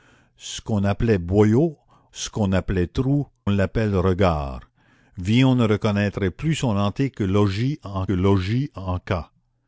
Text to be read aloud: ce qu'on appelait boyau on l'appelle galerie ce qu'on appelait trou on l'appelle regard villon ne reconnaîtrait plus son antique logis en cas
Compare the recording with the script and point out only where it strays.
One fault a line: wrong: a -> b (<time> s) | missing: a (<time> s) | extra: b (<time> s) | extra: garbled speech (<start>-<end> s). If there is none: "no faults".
missing: on l'appelle galerie (1.8 s)
missing: on (3.3 s)
extra: logis en (8.1 s)